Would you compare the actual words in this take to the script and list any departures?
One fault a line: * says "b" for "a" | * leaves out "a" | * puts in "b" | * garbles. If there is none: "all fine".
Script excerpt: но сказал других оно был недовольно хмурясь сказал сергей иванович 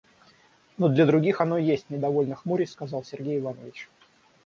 * says "для" for "сказал"
* says "есть" for "был"